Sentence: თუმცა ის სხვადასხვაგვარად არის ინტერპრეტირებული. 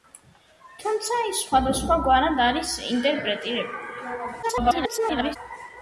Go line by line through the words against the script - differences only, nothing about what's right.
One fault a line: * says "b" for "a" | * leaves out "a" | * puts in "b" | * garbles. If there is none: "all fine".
* garbles